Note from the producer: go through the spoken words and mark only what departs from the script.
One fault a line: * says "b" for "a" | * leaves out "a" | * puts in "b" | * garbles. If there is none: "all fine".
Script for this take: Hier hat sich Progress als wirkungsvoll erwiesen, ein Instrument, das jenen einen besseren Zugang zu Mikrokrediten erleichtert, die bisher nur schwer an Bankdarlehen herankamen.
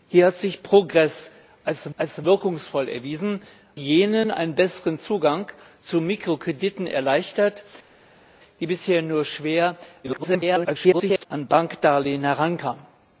* puts in "als"
* leaves out "ein Instrument das"
* garbles